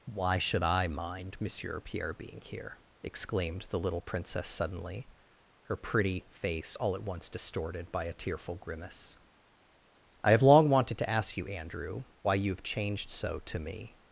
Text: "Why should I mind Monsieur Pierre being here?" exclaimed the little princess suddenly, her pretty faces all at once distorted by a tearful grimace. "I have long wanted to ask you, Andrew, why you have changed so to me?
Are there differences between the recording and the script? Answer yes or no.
yes